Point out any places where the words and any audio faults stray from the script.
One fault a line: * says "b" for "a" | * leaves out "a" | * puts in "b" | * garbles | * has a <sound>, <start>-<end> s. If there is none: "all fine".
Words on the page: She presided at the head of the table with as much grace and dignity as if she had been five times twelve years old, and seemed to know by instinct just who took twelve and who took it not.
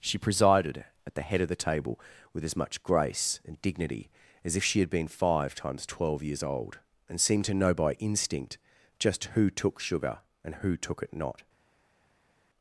* says "sugar" for "twelve"